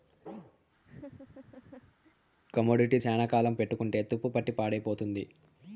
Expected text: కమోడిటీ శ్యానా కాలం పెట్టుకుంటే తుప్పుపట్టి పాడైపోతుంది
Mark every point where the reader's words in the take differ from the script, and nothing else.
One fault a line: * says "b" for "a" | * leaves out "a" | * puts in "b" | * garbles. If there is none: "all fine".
all fine